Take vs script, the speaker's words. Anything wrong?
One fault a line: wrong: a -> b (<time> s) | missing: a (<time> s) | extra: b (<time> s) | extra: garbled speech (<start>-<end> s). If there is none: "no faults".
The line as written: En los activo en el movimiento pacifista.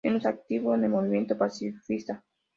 no faults